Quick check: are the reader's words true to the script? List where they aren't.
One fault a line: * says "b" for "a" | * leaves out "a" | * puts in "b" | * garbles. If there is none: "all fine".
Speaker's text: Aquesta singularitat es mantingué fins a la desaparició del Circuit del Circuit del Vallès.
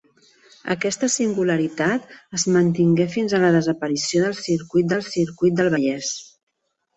all fine